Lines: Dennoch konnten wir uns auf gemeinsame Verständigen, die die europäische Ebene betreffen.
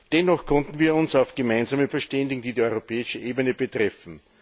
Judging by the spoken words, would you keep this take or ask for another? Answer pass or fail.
pass